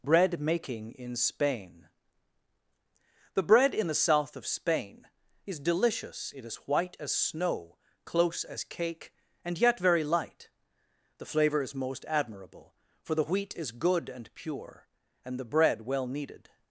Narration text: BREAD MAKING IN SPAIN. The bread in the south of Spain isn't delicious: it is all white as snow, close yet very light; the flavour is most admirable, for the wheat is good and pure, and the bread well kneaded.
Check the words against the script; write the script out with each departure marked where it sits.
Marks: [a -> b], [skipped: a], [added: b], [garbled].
BREAD MAKING IN SPAIN. The bread in the south of Spain [isn't -> is] delicious: it is [skipped: all] white as snow, close [added: as cake and] yet very light; the flavour is most admirable, for the wheat is good and pure, and the bread well kneaded.